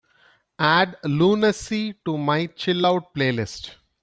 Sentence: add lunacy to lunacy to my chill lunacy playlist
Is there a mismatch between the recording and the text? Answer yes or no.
yes